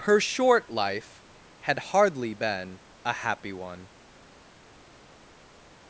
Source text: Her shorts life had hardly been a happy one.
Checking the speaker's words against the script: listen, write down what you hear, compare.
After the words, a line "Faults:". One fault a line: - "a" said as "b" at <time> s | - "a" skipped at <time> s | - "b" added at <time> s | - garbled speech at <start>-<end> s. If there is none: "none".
Her short life had hardly been a happy one.
Faults:
- "shorts" said as "short" at 0.2 s